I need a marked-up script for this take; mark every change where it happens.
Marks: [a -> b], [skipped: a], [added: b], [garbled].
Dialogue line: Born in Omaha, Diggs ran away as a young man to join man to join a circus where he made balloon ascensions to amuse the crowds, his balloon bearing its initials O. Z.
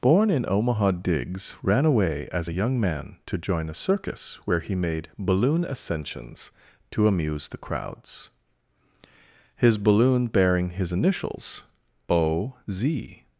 Born in Omaha, Diggs ran away as a young man to join [skipped: man to join] a circus where he made balloon ascensions to amuse the crowds, his balloon bearing [its -> his] initials O. Z.